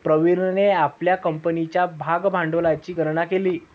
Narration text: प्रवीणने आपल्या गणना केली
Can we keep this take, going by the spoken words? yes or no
no